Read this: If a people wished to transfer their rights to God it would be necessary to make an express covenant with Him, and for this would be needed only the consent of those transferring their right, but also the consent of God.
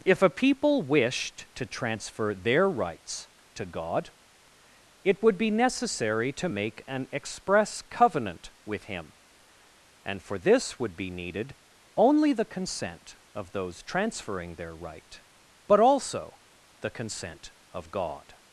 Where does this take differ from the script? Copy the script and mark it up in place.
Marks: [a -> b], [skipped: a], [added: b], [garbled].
If a people wished to transfer their rights to God it would be necessary to make an express covenant with Him, and for this would be needed only the consent of those transferring their right, but also the consent of God.